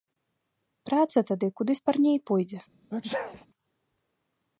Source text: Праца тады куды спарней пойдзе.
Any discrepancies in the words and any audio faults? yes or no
yes